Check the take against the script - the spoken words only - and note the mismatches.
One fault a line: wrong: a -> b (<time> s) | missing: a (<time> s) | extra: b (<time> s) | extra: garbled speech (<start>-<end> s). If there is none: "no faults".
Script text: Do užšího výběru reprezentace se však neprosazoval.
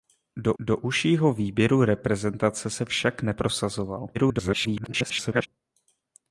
extra: do (0.6 s)
extra: garbled speech (4.1-5.5 s)